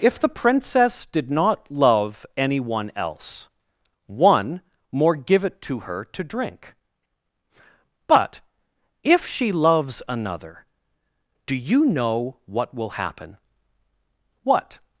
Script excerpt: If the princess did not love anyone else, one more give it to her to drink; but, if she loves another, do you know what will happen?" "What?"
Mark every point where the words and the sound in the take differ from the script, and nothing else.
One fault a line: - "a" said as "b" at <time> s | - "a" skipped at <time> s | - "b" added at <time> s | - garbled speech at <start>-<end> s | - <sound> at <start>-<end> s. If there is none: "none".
none